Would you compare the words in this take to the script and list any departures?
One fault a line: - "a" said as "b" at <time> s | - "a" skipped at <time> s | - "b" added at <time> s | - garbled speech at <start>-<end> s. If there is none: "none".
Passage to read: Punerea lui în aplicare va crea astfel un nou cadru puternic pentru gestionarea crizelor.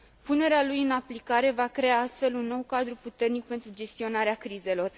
none